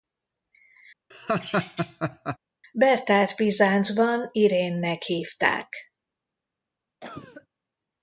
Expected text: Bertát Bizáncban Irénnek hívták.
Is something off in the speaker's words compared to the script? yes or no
no